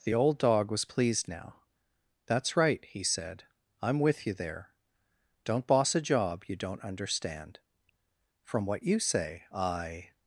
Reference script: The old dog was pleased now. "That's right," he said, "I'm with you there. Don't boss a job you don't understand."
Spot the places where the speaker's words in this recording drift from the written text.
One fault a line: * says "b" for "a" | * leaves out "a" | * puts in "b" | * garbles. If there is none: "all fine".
* puts in "From what you say I"